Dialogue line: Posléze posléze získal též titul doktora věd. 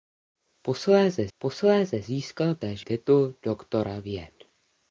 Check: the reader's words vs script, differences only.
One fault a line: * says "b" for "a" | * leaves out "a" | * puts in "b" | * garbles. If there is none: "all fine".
all fine